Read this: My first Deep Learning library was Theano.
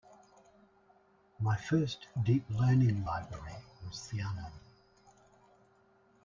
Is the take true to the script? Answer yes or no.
yes